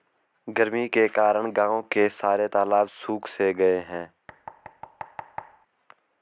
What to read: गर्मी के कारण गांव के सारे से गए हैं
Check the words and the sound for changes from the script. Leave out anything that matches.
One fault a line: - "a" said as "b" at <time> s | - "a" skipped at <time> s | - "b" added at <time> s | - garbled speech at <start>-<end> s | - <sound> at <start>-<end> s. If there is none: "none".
- "तालाब सुख" added at 2.4 s
- thud at 4.3-5.7 s